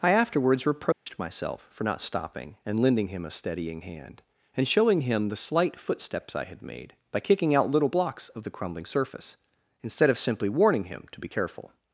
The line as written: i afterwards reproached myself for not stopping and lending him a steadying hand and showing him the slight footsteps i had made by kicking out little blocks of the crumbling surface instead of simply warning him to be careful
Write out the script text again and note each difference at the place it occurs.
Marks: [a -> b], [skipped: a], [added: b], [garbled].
i afterwards reproached myself for not stopping and lending him a steadying hand and showing him the slight footsteps i had made by kicking out little blocks of the crumbling surface instead of simply warning him to be careful